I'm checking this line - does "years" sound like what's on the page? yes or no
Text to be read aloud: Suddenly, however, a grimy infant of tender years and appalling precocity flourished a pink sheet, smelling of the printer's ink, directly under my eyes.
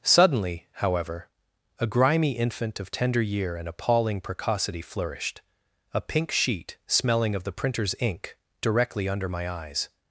no